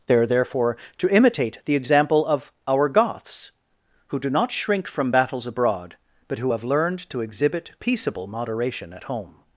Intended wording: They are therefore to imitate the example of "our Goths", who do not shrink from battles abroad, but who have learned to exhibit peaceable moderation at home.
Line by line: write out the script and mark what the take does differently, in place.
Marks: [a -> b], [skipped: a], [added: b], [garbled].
They are therefore to imitate the example of "our Goths", who do not shrink from battles abroad, but who have learned to exhibit peaceable moderation at home.